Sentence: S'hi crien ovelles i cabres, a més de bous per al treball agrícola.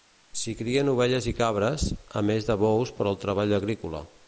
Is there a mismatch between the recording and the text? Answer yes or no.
no